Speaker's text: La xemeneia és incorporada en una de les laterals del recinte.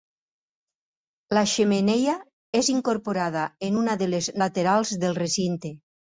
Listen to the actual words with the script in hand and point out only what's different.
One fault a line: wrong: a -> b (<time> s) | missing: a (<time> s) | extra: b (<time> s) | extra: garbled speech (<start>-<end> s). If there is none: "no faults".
no faults